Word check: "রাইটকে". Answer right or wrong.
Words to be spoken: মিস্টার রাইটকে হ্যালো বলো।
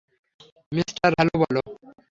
wrong